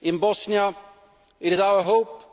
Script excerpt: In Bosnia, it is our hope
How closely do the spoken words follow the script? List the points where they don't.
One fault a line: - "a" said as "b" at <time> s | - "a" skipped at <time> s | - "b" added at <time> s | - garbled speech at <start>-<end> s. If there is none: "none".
none